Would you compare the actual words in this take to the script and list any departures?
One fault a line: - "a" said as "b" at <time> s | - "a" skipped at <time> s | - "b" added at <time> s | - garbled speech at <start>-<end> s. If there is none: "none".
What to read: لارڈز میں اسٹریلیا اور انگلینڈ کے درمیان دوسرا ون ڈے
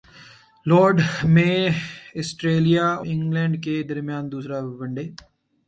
- "اور" skipped at 2.9 s